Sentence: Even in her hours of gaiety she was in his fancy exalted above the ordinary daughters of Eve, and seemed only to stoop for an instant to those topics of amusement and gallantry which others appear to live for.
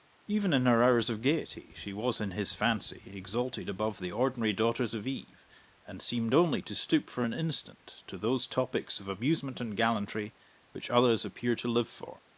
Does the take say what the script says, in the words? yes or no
yes